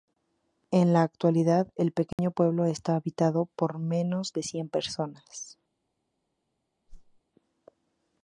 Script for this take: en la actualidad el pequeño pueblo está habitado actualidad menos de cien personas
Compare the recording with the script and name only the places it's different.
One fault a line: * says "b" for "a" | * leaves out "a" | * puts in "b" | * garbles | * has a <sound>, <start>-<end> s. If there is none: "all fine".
* has a dropout, 2.1-2.2 s
* says "por" for "actualidad"
* has a whoosh, 6.9-7.2 s